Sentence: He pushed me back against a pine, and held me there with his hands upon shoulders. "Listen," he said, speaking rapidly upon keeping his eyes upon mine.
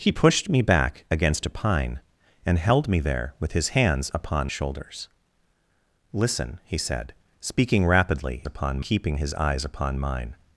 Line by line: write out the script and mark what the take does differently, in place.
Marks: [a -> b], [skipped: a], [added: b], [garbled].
He pushed me back against a pine, and held me there with his hands upon shoulders. "Listen," he said, speaking rapidly upon keeping his eyes upon mine.